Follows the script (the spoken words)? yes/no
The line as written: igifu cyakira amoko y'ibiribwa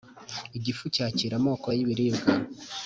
yes